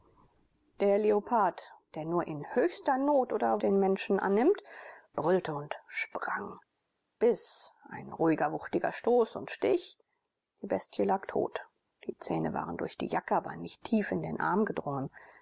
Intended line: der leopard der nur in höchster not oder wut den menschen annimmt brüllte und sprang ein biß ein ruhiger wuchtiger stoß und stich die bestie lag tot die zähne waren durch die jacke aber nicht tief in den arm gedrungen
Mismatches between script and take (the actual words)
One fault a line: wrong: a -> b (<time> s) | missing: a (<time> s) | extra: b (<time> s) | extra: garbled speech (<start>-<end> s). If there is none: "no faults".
missing: wut (3.6 s)
missing: ein (6.6 s)